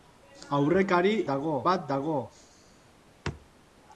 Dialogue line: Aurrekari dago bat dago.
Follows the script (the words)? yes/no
yes